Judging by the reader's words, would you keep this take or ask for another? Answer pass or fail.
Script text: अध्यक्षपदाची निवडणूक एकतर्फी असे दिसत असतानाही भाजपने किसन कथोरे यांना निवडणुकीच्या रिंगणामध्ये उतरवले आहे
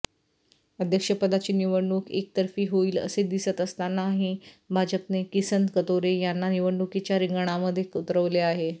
fail